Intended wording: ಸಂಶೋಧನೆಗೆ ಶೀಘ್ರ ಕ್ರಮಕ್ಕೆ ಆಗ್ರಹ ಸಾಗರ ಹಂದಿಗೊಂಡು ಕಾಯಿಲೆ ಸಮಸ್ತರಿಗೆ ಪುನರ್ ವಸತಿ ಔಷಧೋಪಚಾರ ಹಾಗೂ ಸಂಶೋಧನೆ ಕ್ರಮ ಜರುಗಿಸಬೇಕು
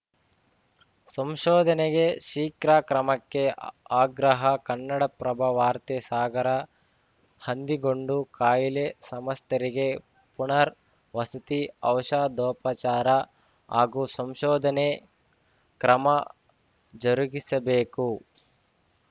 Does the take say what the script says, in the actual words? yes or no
no